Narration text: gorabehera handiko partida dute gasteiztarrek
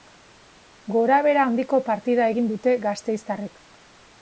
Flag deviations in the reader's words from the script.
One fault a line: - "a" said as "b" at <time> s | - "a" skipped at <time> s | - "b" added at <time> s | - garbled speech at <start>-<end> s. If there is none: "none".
- "egin" added at 2.3 s